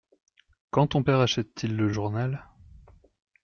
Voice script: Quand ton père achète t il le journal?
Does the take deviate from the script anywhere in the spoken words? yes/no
no